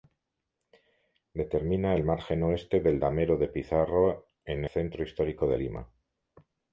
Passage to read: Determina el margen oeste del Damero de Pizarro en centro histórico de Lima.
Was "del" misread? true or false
false